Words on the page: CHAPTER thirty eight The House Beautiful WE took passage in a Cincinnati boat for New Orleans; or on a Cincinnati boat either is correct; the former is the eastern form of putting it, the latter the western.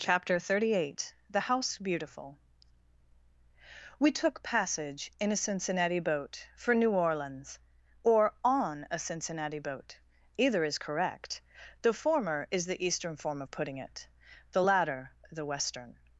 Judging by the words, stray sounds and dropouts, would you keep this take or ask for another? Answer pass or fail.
pass